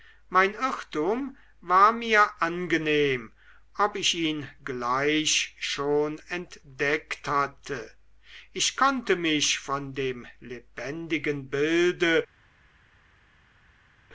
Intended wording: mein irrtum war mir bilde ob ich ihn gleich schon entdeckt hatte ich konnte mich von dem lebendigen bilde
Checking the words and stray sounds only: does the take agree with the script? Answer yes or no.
no